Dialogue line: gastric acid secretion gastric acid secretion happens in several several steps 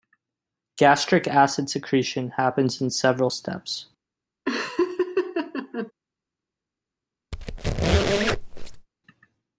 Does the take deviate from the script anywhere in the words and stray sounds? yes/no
yes